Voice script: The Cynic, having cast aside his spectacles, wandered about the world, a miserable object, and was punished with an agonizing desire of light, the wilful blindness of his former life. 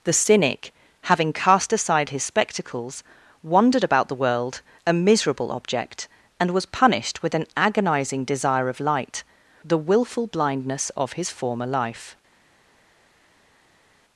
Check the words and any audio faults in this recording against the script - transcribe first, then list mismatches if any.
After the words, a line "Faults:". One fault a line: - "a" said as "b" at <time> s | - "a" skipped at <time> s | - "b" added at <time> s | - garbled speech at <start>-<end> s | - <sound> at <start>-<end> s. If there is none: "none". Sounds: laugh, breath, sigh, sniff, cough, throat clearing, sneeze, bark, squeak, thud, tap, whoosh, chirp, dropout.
The Cynic, having cast aside his spectacles, wandered about the world, a miserable object, and was punished with an agonizing desire of light, the wilful blindness of his former life.
Faults:
none